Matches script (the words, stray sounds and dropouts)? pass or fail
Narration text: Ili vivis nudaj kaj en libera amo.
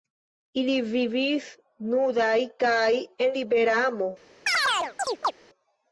fail